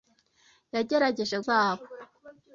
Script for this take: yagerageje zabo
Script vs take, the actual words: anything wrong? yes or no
no